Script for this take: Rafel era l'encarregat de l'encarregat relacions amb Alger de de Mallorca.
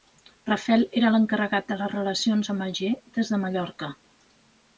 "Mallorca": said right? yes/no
yes